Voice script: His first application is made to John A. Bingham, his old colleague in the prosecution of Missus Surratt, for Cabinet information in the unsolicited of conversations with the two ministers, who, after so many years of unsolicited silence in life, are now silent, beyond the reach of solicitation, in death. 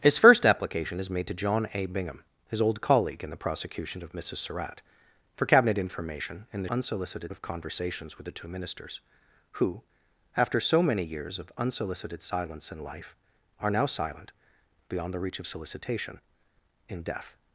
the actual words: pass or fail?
pass